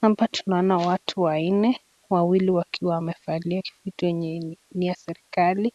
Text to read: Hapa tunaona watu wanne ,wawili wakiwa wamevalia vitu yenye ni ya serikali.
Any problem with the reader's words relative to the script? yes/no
no